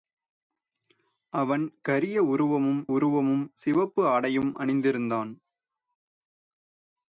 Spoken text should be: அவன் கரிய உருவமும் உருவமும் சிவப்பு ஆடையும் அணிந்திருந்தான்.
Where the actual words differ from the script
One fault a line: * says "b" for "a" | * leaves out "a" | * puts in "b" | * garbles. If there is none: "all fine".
all fine